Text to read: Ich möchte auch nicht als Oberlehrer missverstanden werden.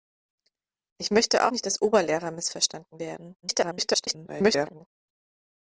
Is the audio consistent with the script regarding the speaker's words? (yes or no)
no